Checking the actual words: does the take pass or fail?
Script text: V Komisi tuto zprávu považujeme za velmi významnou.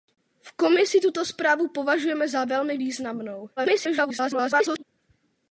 fail